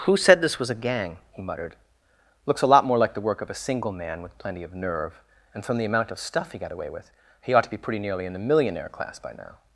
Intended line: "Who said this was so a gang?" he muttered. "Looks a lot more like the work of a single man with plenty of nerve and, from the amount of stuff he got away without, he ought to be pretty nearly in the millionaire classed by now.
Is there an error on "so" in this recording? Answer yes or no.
yes